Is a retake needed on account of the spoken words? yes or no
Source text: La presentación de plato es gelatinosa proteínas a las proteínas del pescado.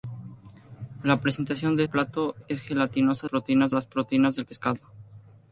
no